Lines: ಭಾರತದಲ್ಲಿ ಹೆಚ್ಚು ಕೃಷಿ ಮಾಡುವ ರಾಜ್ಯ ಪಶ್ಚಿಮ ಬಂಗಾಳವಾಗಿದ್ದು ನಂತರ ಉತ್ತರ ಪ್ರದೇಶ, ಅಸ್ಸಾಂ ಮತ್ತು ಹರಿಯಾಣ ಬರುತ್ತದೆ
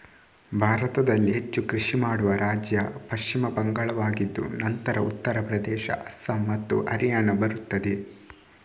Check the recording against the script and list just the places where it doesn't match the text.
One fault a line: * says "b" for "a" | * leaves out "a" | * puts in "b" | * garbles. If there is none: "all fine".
all fine